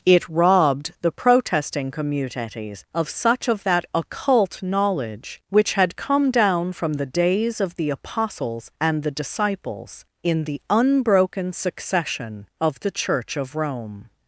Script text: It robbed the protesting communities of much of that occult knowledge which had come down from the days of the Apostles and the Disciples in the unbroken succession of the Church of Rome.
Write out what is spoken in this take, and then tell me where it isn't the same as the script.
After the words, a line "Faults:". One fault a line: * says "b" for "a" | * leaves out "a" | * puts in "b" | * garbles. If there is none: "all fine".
It robbed the protesting communities of such of that occult knowledge which had come down from the days of the Apostles and the Disciples in the unbroken succession of the Church of Rome.
Faults:
* says "such" for "much"